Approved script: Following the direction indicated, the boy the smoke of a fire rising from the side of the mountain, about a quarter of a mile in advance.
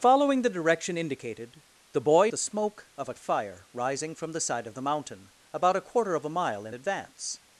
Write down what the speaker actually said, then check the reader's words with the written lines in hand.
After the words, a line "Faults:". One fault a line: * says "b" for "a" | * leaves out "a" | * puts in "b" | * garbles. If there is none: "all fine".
Following the direction indicated, the boy the smoke of a fire rising from the side of the mountain, about a quarter of a mile in advance.
Faults:
all fine